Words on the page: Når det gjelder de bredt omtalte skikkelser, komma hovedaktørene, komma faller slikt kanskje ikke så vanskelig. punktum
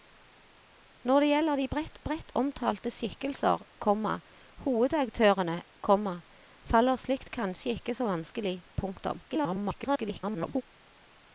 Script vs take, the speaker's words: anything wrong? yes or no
yes